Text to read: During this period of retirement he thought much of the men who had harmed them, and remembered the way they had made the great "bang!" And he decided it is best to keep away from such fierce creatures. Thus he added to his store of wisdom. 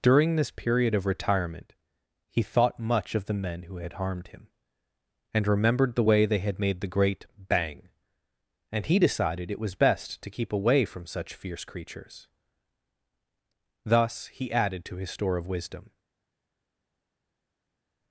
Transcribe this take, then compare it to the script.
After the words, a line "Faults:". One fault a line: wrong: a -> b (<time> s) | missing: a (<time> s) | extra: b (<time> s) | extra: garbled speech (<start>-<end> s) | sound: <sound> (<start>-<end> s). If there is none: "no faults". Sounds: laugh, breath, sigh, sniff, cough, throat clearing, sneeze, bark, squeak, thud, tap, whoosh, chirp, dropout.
During this period of retirement he thought much of the men who had harmed him, and remembered the way they had made the great "bang!" And he decided it was best to keep away from such fierce creatures. Thus he added to his store of wisdom.
Faults:
wrong: them -> him (4.3 s)
wrong: is -> was (9.6 s)